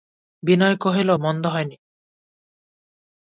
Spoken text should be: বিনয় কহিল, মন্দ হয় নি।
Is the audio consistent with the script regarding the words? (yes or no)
yes